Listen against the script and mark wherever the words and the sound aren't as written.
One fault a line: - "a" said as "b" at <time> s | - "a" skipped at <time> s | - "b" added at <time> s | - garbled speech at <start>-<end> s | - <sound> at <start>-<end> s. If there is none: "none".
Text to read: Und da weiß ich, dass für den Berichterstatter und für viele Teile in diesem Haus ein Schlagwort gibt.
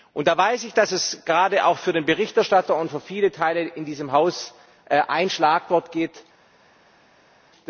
- "es gerade auch" added at 0.9 s